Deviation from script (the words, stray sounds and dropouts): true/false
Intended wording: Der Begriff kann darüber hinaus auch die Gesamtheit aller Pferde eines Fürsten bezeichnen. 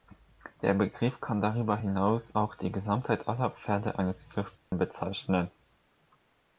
true